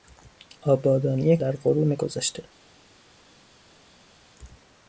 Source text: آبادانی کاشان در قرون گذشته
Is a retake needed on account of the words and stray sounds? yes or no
yes